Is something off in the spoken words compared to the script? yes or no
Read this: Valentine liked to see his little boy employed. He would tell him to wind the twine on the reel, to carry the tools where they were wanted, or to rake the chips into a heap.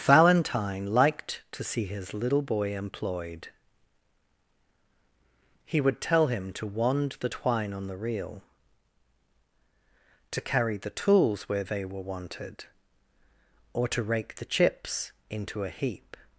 yes